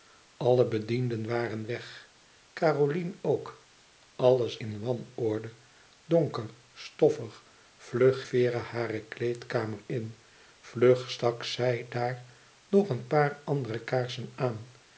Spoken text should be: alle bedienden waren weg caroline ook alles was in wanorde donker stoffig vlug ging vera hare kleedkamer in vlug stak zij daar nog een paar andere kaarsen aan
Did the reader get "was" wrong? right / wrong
wrong